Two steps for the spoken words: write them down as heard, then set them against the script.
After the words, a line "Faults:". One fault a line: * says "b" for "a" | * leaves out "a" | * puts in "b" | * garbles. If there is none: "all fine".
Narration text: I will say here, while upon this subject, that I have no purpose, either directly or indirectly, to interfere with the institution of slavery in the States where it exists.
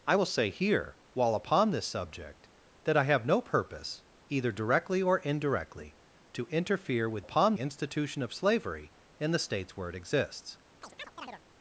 I will say here, while upon this subject, that I have no purpose, either directly or indirectly, to interfere with upon institution of slavery in the States where it exists.
Faults:
* says "upon" for "the"